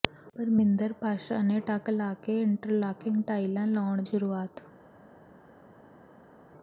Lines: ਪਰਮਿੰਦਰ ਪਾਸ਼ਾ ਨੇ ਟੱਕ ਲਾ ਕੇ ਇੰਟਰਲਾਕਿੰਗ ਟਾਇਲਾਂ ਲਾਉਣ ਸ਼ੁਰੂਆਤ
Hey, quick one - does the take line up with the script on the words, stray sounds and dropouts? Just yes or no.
yes